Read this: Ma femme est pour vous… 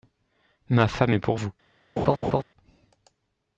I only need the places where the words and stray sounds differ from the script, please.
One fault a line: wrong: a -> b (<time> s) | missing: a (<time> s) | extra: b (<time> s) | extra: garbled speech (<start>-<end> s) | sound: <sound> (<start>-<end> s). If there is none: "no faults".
sound: laugh (2.0-2.4 s)